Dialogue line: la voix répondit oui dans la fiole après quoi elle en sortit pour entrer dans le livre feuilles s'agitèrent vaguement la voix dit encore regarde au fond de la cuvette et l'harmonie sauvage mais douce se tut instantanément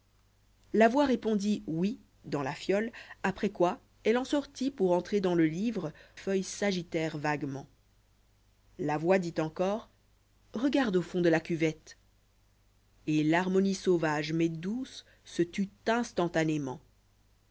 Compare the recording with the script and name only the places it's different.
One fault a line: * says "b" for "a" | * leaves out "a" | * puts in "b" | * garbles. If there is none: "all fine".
all fine